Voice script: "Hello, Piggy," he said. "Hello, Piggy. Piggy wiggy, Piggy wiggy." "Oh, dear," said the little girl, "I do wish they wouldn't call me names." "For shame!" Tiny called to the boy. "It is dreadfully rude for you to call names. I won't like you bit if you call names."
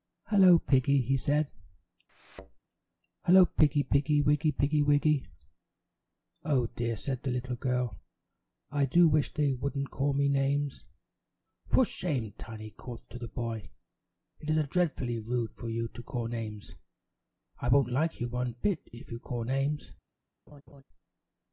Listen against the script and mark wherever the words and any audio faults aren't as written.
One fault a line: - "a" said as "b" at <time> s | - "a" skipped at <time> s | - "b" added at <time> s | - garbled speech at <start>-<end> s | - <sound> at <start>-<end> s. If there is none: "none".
- thud at 2.1-2.6 s
- "one" added at 18.3 s
- laugh at 20.5-20.8 s